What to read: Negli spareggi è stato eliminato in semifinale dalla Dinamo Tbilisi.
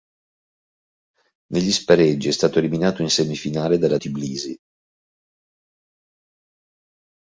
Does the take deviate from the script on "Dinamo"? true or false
true